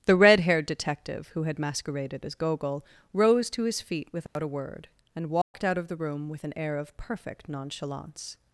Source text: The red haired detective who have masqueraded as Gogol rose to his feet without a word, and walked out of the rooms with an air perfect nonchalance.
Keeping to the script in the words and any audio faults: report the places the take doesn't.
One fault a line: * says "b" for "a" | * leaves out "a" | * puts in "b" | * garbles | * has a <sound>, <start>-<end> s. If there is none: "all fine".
* says "had" for "have"
* has a dropout, 4.3-4.4 s
* has a dropout, 5.4-5.5 s
* says "room" for "rooms"
* puts in "of"